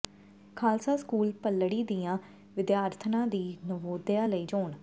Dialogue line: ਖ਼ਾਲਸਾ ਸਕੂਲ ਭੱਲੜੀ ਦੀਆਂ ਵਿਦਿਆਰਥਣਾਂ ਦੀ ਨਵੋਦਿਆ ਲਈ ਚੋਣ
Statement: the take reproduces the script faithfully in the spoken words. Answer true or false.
true